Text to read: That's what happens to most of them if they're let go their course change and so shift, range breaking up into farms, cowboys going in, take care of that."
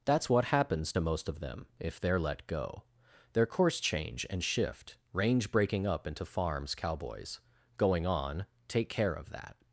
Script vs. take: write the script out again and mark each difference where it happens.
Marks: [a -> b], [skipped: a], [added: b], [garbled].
That's what happens to most of them if they're let go their course change and [skipped: so] shift, range breaking up into farms, cowboys going [in, -> on] take care of that."